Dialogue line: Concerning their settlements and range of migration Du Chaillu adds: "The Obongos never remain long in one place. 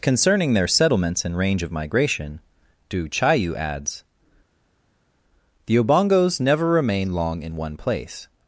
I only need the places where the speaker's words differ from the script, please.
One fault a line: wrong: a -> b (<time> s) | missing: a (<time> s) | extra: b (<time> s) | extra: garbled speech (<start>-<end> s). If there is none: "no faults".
no faults